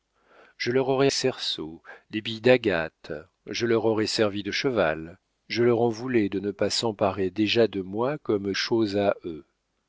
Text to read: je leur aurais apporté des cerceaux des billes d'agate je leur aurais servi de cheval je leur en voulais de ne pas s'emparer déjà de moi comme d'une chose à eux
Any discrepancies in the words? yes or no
yes